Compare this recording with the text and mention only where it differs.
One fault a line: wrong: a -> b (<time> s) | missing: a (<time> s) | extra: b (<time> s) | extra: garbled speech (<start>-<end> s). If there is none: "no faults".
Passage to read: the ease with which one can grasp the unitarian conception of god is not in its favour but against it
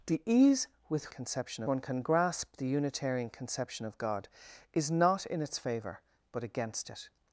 wrong: which -> conception (1.1 s)